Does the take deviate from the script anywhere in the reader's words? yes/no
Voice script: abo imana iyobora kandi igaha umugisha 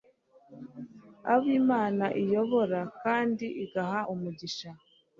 no